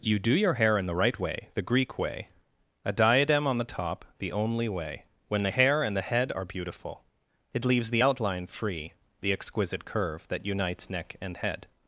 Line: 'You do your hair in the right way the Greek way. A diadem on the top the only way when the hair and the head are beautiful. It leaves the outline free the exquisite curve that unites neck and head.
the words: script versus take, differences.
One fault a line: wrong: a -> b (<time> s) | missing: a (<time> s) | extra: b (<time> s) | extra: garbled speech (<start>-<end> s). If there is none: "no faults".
no faults